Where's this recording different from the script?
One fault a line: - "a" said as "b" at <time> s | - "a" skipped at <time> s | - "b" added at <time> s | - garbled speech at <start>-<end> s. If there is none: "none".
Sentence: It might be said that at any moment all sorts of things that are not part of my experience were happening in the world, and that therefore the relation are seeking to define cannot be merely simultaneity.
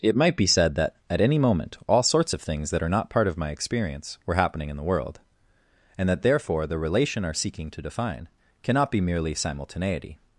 none